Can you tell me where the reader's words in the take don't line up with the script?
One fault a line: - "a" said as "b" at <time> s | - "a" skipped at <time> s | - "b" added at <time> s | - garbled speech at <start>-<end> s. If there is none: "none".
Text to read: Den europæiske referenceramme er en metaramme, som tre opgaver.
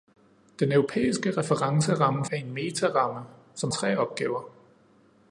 none